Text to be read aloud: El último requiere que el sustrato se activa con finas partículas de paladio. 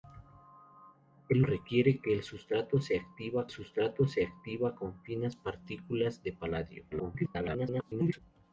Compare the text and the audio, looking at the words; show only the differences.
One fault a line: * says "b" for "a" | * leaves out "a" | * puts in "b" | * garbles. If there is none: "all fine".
* leaves out "último"
* puts in "sustrato se activa"
* garbles